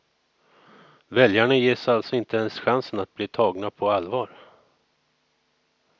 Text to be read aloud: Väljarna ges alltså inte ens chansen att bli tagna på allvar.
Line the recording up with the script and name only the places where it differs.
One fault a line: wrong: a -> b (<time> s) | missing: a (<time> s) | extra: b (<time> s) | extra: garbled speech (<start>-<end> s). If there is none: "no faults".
no faults